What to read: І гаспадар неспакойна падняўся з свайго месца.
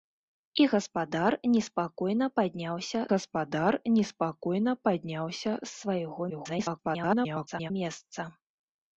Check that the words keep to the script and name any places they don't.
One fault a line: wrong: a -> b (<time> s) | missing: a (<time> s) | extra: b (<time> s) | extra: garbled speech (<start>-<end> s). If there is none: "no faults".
extra: гаспадар неспакойна падняўся (3.1 s)
extra: garbled speech (6.3-7.7 s)